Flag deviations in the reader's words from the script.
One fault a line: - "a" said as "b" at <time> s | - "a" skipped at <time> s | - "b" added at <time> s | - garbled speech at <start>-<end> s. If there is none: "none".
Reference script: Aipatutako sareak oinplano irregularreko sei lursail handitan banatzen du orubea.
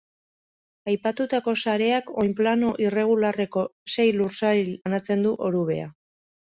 - "handitan" skipped at 4.8 s